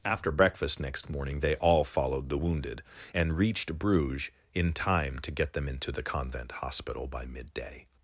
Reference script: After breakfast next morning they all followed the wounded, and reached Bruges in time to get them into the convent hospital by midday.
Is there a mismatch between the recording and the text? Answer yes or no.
no